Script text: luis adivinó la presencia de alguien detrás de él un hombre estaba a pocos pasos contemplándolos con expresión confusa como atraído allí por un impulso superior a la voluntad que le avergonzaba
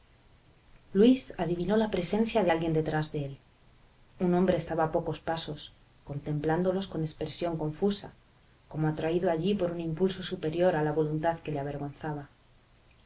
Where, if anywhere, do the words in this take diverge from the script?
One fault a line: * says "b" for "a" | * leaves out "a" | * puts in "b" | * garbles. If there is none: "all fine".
all fine